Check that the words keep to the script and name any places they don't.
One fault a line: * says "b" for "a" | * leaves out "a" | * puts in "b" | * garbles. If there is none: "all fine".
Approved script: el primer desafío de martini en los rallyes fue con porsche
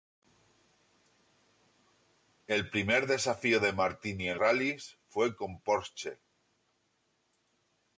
* leaves out "los"